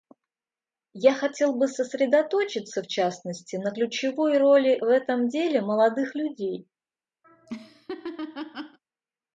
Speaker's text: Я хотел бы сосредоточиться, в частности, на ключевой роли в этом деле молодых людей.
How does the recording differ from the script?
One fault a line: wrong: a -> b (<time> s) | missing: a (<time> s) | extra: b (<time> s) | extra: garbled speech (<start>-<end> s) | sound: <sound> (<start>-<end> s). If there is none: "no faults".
sound: laugh (7.2-8.8 s)